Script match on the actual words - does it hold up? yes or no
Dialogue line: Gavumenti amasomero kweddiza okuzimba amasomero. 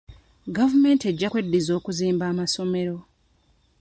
no